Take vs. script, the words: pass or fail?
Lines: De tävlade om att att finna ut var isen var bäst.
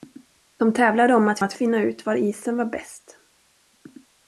pass